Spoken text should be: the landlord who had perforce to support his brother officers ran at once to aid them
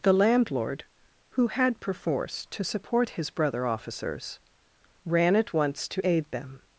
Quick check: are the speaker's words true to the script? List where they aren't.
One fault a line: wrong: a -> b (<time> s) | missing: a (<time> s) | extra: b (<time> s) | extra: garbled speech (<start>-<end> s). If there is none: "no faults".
no faults